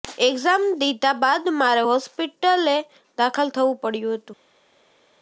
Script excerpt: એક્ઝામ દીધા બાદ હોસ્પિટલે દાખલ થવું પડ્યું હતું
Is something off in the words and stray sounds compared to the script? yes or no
yes